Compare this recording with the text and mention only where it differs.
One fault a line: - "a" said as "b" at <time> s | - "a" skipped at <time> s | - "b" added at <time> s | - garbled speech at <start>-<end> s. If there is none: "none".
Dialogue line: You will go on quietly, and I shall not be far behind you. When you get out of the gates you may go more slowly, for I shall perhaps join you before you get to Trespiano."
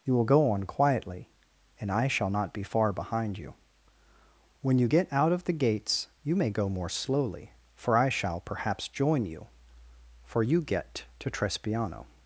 - "before" said as "for" at 10.2 s